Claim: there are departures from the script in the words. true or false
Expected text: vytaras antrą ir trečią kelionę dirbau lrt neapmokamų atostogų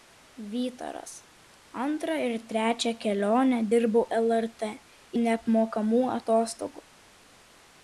false